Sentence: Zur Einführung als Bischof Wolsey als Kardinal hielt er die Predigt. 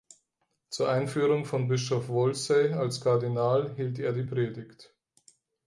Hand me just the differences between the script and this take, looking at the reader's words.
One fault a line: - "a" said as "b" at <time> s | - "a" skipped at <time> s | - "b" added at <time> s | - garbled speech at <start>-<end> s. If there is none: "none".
- "als" said as "von" at 1.4 s